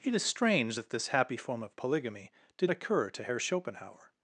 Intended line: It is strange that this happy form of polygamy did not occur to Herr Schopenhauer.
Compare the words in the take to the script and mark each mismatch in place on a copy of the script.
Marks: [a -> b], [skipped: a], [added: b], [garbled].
It is strange that this happy form of polygamy did [skipped: not] occur to Herr Schopenhauer.